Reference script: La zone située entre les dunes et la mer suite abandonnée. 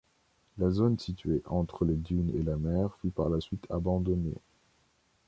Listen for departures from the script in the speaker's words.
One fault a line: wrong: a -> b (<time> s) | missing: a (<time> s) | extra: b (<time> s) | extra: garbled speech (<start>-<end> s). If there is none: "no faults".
extra: fut par la (3.0 s)